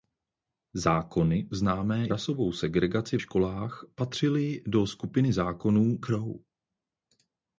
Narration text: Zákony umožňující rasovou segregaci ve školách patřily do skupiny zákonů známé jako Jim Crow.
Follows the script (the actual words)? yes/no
no